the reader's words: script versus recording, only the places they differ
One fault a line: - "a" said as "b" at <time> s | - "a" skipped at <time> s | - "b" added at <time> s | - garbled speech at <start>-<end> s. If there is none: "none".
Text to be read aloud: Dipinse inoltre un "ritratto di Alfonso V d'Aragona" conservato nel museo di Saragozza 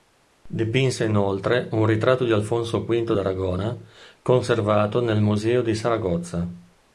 none